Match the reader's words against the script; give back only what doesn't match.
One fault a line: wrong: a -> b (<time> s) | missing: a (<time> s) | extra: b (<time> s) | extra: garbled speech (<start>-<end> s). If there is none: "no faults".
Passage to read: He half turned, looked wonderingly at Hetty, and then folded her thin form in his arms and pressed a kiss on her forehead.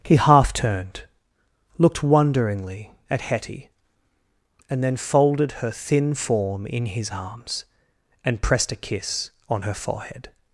no faults